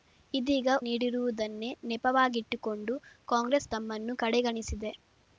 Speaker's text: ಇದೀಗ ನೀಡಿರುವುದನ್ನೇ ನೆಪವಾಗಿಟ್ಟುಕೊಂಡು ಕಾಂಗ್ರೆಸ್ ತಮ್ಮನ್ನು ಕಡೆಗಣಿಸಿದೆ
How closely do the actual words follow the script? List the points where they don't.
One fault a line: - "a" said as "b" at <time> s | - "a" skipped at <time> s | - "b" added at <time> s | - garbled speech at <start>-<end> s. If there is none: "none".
none